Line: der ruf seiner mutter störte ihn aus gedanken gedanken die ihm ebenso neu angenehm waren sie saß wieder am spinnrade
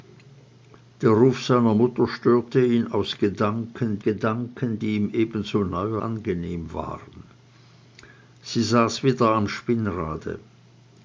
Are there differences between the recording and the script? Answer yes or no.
no